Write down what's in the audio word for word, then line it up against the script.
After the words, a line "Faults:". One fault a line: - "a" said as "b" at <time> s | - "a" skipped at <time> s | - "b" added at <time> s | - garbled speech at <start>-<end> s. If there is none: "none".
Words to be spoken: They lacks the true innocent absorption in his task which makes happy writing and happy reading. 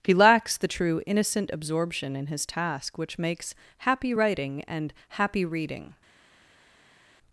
He lacks the true innocent absorption in his task which makes happy writing and happy reading.
Faults:
- "They" said as "He" at 0.0 s